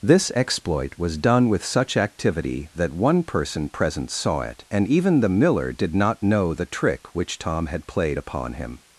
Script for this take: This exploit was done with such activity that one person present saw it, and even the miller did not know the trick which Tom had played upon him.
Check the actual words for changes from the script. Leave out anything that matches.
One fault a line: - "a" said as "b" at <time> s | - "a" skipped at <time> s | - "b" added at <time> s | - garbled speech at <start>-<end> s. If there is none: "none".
none